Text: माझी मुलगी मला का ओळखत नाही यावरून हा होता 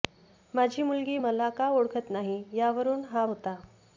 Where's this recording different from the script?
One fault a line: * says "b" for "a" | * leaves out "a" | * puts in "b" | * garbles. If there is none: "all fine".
all fine